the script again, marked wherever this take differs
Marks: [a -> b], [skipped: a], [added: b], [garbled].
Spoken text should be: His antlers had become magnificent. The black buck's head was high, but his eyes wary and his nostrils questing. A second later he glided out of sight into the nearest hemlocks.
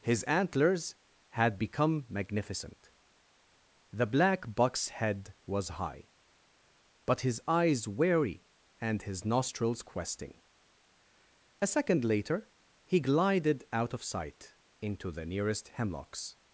His antlers had become magnificent. The black buck's head was high, but his eyes wary and his nostrils questing. A second later he glided out of sight into the nearest hemlocks.